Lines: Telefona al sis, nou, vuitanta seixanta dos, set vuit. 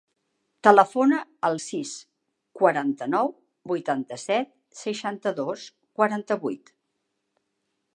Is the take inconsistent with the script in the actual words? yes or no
yes